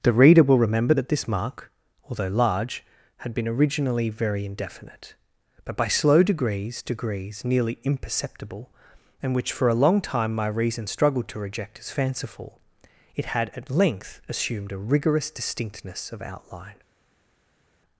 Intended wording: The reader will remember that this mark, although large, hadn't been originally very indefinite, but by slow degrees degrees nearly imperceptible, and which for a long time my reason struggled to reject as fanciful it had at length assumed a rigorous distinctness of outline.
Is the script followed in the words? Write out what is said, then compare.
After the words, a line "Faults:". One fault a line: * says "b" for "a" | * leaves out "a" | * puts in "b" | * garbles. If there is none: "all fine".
The reader will remember that this mark, although large, had been originally very indefinite, but by slow degrees degrees nearly imperceptible, and which for a long time my reason struggled to reject as fanciful it had at length assumed a rigorous distinctness of outline.
Faults:
* says "had" for "hadn't"